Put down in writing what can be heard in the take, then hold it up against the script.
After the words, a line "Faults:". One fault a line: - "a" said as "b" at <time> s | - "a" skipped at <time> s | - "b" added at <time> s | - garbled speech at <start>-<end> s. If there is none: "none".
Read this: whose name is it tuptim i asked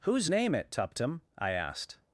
whose name it tuptim i asked
Faults:
- "is" skipped at 0.5 s